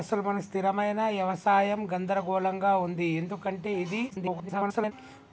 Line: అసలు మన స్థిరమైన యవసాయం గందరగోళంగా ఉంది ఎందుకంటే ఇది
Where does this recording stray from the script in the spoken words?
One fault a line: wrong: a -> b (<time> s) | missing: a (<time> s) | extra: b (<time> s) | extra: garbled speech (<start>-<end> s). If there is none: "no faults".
extra: garbled speech (4.1-4.9 s)